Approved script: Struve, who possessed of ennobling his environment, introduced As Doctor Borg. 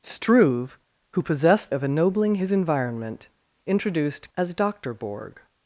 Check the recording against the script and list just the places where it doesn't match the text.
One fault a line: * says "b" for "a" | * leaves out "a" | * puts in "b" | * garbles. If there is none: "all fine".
all fine